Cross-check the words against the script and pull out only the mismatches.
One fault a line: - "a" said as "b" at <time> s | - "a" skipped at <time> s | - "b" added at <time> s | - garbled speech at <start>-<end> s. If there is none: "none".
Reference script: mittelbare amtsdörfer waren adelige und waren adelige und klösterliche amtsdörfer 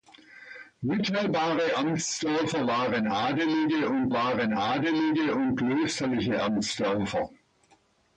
none